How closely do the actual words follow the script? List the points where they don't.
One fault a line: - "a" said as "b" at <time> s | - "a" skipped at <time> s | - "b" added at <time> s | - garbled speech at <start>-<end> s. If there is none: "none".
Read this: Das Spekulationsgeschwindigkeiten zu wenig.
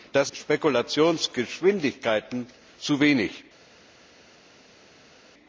none